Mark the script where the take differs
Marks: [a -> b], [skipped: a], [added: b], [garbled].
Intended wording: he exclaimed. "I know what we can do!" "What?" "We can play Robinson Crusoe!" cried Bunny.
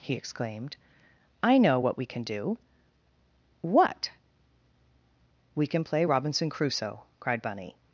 he exclaimed. "I know what we can do!" "What?" "We can play Robinson Crusoe!" cried Bunny.